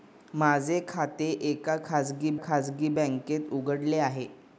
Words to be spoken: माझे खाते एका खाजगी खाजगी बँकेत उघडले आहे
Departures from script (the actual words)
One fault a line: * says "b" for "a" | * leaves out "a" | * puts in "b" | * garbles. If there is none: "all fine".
all fine